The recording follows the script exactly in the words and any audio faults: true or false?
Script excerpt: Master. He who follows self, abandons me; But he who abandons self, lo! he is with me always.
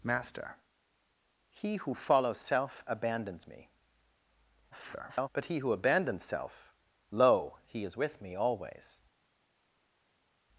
false